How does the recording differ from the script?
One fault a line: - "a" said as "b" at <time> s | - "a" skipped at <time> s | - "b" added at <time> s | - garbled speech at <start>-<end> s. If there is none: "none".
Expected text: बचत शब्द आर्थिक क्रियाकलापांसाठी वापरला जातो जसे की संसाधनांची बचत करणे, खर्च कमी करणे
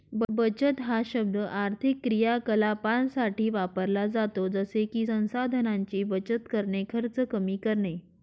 - "हा" added at 0.8 s